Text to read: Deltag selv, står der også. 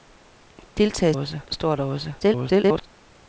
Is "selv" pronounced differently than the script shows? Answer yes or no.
yes